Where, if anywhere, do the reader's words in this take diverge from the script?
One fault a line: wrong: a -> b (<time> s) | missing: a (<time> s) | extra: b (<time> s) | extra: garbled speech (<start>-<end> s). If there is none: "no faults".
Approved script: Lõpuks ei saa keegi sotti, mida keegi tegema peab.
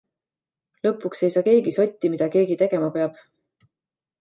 no faults